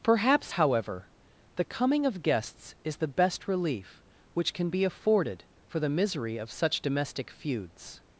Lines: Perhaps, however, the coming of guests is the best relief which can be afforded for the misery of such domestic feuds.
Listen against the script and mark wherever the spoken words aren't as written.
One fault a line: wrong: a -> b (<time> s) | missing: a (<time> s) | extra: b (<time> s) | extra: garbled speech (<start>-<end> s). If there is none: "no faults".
no faults